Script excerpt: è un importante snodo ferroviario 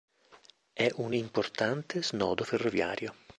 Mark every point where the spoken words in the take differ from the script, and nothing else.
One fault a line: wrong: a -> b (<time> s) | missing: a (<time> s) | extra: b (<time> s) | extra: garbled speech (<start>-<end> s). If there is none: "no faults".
no faults